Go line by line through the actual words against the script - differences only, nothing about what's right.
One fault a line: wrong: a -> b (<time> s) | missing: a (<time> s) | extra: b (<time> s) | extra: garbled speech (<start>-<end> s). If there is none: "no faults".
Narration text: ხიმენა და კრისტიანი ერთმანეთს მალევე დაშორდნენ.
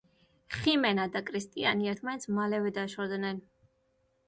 no faults